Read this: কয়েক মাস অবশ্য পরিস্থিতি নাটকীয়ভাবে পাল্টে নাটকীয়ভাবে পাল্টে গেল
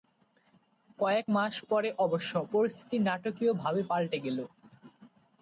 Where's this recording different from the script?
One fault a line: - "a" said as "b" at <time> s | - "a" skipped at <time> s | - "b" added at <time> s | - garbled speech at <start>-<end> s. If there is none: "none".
- "পরে" added at 1.7 s
- "নাটকীয়ভাবে পাল্টে" skipped at 4.2 s